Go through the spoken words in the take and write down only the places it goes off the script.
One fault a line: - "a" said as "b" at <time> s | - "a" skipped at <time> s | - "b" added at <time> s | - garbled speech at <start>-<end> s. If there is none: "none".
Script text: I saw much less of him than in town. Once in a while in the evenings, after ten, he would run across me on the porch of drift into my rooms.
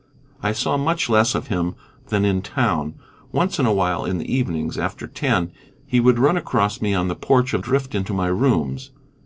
none